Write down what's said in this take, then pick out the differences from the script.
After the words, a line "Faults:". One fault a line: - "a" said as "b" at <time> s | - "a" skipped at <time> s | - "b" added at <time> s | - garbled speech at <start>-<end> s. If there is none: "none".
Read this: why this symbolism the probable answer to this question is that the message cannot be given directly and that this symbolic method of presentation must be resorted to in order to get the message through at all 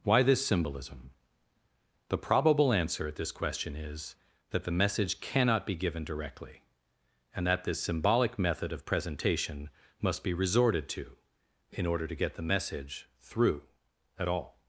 why this symbolism the probable answer at this question is that the message cannot be given directly and that this symbolic method of presentation must be resorted to in order to get the message through at all
Faults:
- "to" said as "at" at 3.1 s